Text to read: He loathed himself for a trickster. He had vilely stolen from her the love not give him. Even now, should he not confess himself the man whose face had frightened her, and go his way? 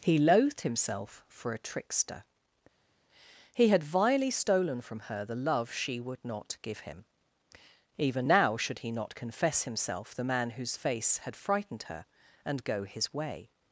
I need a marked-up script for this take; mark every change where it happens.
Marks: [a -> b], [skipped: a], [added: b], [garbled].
He loathed himself for a trickster. He had vilely stolen from her the love [added: she would] not give him. Even now, should he not confess himself the man whose face had frightened her, and go his way?